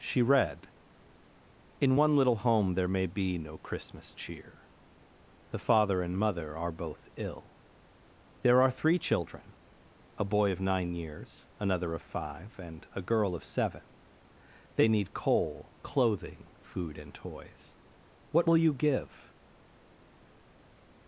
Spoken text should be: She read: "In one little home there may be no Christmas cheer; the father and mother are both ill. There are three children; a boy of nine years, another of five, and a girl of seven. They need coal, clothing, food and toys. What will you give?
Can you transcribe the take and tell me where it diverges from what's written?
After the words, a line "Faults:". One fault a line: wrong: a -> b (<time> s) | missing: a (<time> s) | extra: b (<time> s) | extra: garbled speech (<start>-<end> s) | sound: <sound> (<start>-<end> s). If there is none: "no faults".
She read: "In one little home there may be no Christmas cheer; the father and mother are both ill. There are three children; a boy of nine years, another of five, and a girl of seven. They need coal, clothing, food and toys. What will you give?
Faults:
no faults